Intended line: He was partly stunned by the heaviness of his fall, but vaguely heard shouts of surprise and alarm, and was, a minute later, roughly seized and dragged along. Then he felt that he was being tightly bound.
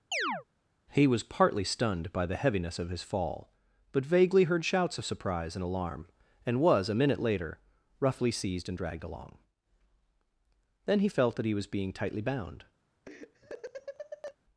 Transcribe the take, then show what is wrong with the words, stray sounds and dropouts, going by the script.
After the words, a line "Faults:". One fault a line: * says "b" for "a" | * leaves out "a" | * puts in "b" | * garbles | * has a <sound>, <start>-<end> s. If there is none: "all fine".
He was partly stunned by the heaviness of his fall, but vaguely heard shouts of surprise and alarm, and was, a minute later, roughly seized and dragged along. Then he felt that he was being tightly bound.
Faults:
* has a chirp, 0.1-0.4 s
* has a laugh, 13.1-14.4 s